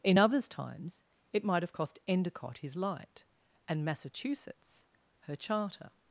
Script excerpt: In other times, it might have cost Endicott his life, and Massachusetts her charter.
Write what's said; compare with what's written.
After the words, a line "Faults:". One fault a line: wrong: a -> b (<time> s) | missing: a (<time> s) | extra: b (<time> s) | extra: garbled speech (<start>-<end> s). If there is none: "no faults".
In others times, it might have cost Endicott his light, and Massachusetts her charter.
Faults:
wrong: other -> others (0.2 s)
wrong: life -> light (2.7 s)